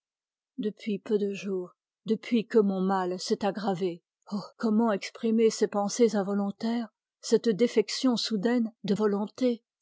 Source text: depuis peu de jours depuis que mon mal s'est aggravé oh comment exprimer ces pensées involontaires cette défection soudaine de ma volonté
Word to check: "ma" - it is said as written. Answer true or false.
false